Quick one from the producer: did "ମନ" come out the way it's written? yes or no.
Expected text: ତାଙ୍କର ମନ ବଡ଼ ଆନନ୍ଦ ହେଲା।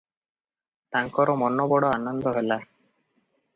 yes